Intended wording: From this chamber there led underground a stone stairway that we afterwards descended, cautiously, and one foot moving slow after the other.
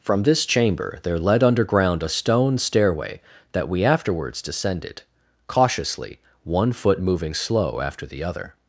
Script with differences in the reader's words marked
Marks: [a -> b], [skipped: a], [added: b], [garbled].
From this chamber there led underground a stone stairway that we afterwards descended, cautiously, [skipped: and] one foot moving slow after the other.